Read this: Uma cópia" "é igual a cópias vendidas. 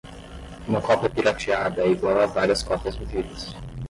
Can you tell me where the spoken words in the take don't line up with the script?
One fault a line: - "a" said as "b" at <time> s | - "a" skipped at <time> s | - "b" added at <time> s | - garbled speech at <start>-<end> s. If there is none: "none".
- "pirateada" added at 1.1 s
- "várias" added at 2.3 s